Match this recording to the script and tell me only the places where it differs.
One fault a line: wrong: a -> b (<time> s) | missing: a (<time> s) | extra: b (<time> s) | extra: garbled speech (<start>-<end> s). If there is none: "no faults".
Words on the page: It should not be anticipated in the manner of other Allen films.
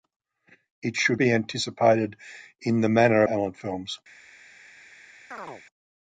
missing: not (1.2 s)
missing: of other (3.2 s)